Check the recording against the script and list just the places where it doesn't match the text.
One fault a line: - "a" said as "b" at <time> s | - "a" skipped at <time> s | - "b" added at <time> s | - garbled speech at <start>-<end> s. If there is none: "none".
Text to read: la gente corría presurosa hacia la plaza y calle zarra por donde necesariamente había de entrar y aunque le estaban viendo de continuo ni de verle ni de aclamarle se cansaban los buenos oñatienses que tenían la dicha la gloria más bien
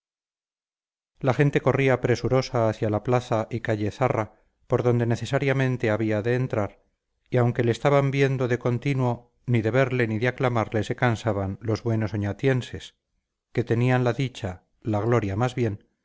none